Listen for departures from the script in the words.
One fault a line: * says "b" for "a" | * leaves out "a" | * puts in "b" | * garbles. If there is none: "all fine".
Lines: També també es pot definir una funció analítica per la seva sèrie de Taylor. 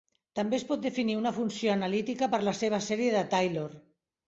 * leaves out "també"